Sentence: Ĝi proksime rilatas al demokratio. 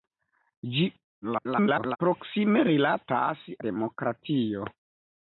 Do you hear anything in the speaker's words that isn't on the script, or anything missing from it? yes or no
yes